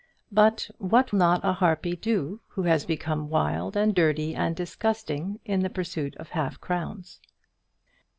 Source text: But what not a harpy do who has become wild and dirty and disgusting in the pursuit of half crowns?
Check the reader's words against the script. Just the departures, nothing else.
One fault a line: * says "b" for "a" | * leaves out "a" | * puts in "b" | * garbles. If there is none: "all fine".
all fine